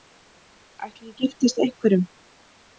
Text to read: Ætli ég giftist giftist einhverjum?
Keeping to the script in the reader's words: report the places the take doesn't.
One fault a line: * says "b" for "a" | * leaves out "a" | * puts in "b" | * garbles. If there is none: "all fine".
* leaves out "giftist"